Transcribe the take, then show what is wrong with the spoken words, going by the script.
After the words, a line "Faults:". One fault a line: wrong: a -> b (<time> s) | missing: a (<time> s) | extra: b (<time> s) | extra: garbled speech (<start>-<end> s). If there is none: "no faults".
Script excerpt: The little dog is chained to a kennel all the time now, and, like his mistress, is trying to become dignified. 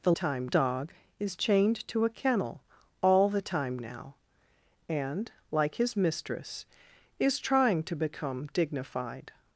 The time dog is chained to a kennel all the time now, and, like his mistress, is trying to become dignified.
Faults:
wrong: little -> time (0.1 s)